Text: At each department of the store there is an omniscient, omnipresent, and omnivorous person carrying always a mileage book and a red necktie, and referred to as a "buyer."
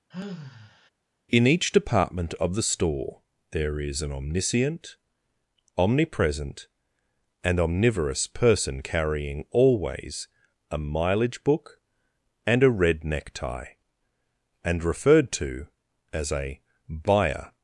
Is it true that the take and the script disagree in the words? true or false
true